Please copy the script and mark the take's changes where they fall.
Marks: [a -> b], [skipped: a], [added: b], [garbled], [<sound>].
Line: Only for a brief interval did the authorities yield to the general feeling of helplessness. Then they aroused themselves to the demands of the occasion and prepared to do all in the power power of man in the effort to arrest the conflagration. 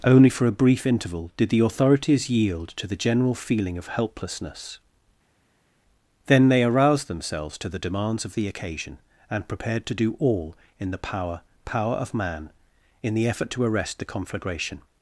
Only for a brief interval did the authorities yield to the general feeling of helplessness. Then they aroused themselves to the demands of the occasion and prepared to do all in the power power of man in the effort to arrest the conflagration.